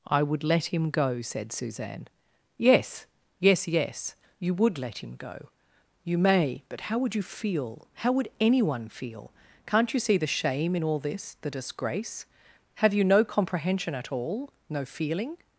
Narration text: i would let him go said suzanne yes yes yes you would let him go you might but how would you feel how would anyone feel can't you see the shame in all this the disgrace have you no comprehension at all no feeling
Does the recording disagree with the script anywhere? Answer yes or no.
yes